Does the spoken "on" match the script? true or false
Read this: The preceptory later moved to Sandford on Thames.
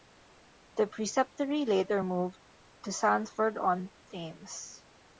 true